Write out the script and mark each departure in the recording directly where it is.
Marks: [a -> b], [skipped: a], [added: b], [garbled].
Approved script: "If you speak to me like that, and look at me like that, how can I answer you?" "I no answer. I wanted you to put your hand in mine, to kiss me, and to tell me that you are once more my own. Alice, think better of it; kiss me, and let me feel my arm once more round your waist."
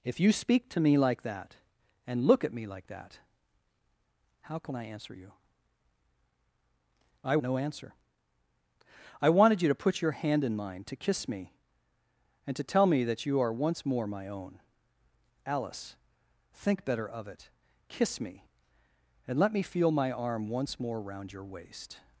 "If you speak to me like that, and look at me like that, how can I answer you?" "I no answer. I wanted you to put your hand in mine, to kiss me, and to tell me that you are once more my own. Alice, think better of it; kiss me, and let me feel my arm once more round your waist."